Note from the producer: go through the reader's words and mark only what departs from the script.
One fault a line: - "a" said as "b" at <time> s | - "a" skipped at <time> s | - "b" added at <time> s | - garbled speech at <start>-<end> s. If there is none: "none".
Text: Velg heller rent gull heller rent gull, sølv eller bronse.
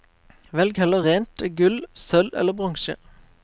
- "heller rent gull" skipped at 1.8 s